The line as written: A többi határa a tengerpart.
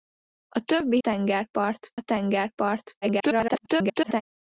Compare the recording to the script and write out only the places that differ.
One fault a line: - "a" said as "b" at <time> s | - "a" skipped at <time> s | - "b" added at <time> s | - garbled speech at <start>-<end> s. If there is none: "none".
- "határa" said as "tengerpart" at 1.0 s
- garbled speech at 3.0-4.2 s